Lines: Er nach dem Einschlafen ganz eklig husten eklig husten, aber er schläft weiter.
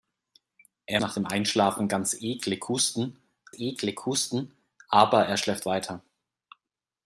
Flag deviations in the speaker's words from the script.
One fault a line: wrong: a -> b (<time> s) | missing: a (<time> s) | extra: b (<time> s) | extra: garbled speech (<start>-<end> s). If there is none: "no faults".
no faults